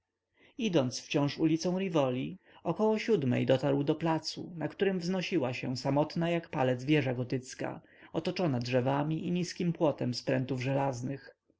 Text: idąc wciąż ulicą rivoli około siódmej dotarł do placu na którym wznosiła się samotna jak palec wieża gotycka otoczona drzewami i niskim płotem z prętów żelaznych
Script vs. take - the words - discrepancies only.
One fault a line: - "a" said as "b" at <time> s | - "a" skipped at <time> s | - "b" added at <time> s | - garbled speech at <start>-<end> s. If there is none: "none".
none